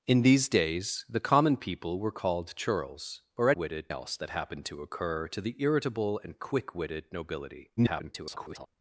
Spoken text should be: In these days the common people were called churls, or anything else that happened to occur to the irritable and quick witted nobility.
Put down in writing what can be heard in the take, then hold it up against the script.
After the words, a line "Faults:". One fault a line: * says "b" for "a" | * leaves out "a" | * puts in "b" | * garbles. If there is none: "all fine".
In these days the common people were called churls, or witted else that happened to occur to the irritable and quick witted nobility. [garbled]
Faults:
* says "witted" for "anything"
* garbles